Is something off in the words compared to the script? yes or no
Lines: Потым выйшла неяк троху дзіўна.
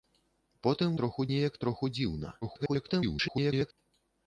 yes